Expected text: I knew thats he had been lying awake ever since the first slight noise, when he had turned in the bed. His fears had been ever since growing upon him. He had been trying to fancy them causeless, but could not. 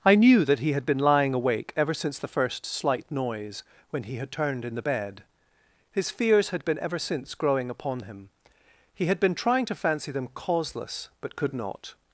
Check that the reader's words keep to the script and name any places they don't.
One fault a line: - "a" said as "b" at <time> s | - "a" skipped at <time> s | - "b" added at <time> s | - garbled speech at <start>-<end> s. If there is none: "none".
- "thats" said as "that" at 0.5 s